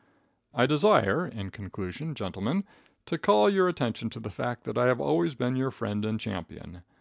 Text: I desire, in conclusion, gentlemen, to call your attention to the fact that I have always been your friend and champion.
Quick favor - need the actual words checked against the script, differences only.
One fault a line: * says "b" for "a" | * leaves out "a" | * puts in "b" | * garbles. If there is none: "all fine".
all fine